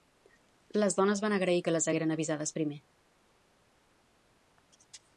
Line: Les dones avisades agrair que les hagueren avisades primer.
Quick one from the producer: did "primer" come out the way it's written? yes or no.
yes